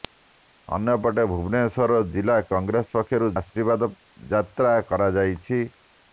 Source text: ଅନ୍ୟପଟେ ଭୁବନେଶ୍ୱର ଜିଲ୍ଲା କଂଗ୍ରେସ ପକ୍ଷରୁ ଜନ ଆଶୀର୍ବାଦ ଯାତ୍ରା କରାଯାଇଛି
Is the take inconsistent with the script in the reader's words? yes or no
yes